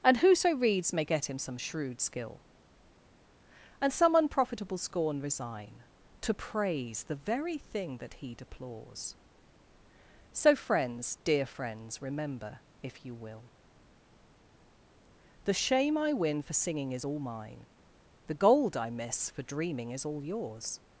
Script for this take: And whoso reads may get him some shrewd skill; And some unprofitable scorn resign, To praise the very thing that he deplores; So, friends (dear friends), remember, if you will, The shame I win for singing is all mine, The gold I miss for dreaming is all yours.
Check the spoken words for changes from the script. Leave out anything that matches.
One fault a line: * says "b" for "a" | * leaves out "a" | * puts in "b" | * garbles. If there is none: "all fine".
all fine